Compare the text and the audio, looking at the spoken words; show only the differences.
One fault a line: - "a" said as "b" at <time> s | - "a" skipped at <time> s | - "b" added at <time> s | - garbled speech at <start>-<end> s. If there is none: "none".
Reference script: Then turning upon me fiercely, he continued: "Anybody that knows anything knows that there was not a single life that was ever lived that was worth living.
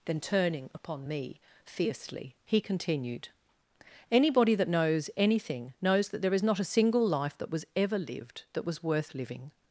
- "was" said as "is" at 6.3 s